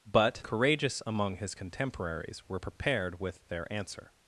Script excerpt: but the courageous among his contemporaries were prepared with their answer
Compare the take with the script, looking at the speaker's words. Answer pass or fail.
fail